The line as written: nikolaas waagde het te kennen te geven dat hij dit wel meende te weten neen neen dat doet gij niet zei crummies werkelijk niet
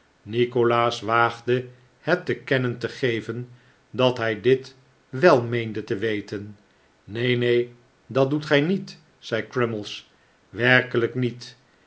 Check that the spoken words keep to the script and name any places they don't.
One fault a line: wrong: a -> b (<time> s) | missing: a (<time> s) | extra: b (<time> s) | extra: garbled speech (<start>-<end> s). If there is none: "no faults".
no faults